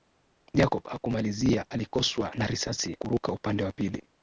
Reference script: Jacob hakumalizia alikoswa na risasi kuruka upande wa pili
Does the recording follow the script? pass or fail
pass